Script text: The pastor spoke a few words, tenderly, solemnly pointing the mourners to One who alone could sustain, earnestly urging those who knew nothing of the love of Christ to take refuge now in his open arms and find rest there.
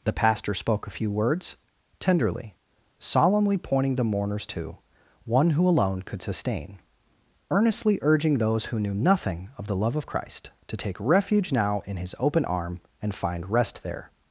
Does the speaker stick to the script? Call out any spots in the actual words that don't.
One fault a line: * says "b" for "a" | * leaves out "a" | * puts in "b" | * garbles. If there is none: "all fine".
* says "arm" for "arms"